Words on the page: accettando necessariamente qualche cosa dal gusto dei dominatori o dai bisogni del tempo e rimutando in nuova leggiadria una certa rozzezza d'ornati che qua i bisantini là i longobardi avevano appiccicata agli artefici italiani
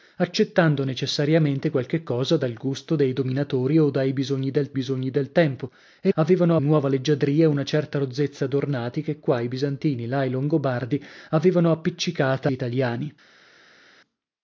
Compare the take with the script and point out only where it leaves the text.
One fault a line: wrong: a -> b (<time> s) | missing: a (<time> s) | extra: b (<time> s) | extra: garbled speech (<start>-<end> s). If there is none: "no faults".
extra: bisogni del (4.7 s)
wrong: rimutando -> avevano (6.1 s)
missing: agli artefici (12.5 s)